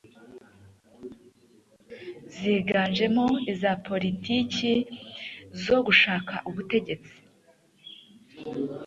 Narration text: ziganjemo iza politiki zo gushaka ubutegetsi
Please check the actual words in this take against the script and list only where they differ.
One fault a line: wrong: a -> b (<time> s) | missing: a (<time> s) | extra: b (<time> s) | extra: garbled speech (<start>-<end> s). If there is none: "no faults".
no faults